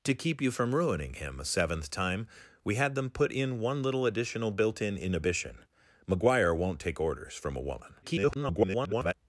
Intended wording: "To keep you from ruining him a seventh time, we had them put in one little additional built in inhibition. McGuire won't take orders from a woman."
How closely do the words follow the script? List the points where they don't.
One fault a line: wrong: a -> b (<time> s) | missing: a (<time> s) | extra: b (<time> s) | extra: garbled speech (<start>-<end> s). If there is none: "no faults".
extra: garbled speech (8.0-9.1 s)